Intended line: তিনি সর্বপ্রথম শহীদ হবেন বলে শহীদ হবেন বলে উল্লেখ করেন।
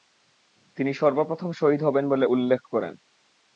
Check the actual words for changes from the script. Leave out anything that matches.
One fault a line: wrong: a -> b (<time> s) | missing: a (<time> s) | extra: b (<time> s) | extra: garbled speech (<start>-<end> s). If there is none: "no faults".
missing: শহীদ হবেন বলে (2.3 s)